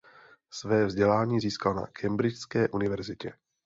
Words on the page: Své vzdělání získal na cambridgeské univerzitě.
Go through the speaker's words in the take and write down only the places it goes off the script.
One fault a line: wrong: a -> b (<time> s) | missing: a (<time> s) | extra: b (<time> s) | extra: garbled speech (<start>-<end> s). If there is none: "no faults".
no faults